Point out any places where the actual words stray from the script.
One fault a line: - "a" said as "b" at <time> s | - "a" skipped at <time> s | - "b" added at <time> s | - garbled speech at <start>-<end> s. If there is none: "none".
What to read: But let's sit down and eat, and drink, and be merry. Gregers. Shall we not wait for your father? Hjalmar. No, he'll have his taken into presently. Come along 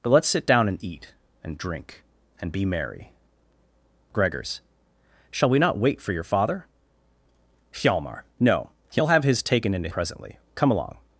none